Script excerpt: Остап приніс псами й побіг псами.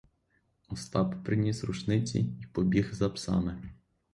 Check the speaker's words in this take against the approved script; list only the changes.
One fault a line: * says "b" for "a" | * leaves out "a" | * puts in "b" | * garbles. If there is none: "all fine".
* says "рушниці" for "псами"
* puts in "за"